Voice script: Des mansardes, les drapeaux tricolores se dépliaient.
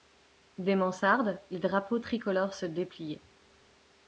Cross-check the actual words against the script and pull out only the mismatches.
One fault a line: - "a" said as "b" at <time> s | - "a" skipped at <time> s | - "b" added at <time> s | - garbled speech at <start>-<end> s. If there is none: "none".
none